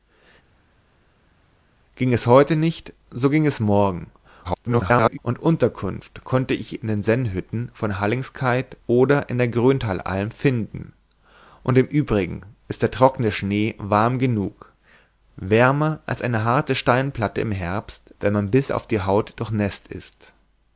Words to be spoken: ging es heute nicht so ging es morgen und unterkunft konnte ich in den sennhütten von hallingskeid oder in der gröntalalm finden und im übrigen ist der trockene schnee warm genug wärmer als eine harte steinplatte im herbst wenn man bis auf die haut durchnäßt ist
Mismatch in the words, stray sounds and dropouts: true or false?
true